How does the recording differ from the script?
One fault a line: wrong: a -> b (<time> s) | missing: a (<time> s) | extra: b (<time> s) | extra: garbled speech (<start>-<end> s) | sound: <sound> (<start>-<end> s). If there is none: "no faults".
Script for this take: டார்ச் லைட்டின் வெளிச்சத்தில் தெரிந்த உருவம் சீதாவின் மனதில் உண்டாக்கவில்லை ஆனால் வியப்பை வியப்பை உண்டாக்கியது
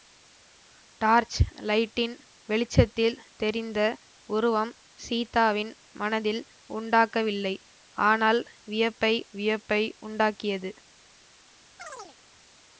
sound: chirp (11.8-12.2 s)